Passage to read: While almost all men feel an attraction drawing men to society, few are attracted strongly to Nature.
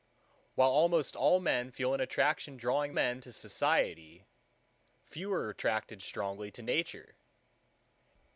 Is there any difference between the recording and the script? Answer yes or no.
no